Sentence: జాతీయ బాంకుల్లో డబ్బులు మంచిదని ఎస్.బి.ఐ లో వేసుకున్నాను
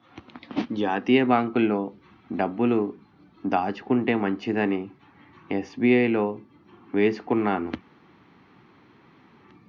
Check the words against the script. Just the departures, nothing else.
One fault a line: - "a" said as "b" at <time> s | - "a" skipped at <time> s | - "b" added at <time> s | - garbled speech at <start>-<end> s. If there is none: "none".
- "దాచుకుంటే" added at 3.5 s